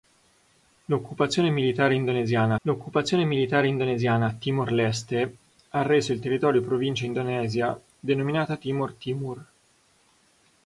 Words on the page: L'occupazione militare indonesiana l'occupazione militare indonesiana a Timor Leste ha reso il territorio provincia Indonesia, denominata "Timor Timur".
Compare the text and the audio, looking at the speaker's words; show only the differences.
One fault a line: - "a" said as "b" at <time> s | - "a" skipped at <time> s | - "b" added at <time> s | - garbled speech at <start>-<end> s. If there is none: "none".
none